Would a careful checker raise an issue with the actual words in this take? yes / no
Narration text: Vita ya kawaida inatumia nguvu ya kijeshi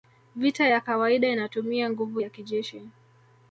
no